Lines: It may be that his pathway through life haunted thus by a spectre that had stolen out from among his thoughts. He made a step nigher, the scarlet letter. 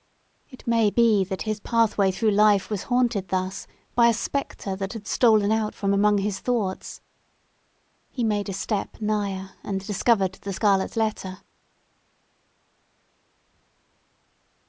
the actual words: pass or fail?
fail